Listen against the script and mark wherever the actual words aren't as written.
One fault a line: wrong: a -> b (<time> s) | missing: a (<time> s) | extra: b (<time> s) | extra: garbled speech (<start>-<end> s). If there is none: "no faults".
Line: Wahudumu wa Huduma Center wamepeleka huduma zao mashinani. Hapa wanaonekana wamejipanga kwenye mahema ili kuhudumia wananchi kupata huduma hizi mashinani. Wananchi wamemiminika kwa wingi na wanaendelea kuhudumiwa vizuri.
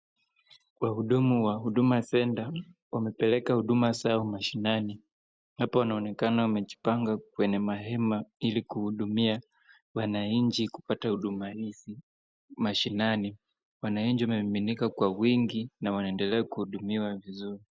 no faults